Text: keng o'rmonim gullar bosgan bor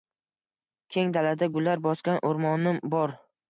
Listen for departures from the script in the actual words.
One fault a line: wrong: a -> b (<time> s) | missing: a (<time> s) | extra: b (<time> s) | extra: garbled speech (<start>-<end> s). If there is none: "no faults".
wrong: o'rmonim -> dalada (1.2 s)
extra: o'rmonim (2.3 s)